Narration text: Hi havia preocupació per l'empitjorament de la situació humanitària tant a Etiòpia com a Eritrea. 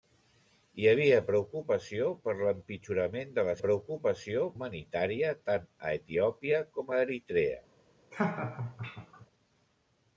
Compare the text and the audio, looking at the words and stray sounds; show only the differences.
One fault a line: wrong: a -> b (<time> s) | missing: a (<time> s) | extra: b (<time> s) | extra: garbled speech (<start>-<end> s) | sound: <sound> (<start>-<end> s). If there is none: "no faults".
wrong: situació -> preocupació (3.6 s)
sound: laugh (8.1-9.3 s)